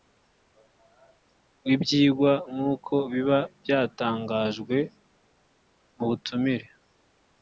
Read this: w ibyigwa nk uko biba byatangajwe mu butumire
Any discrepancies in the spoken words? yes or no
no